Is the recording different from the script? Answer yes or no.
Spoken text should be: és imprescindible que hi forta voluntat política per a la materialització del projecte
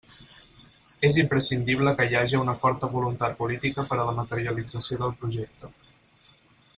yes